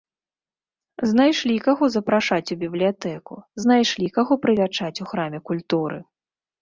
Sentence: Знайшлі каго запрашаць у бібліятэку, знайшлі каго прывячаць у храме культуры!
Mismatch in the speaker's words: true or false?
false